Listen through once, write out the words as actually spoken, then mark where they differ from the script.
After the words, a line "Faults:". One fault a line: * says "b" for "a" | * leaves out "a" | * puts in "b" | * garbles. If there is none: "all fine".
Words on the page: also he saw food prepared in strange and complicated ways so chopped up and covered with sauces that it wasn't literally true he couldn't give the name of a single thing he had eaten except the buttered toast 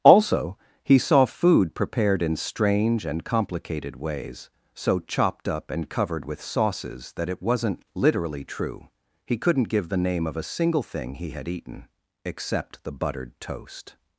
also he saw food prepared in strange and complicated ways so chopped up and covered with sauces that it wasn't literally true he couldn't give the name of a single thing he had eaten except the buttered toast
Faults:
all fine